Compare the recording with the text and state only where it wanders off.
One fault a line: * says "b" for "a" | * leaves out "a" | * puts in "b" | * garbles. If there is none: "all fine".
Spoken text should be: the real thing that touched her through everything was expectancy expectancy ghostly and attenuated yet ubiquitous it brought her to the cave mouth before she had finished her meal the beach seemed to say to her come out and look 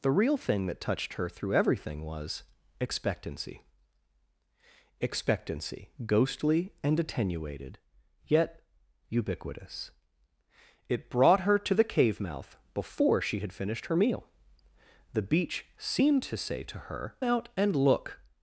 * leaves out "come"